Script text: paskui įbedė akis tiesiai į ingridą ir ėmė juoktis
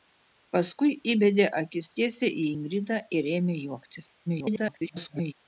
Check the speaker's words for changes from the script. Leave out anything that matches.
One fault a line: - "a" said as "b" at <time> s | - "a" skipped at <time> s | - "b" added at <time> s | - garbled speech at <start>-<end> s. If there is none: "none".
- garbled speech at 4.3-5.3 s